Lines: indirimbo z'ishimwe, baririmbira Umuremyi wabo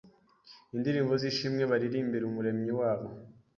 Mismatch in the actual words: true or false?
false